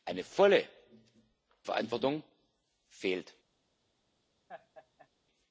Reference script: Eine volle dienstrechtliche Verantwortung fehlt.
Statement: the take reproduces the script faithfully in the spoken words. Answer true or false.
false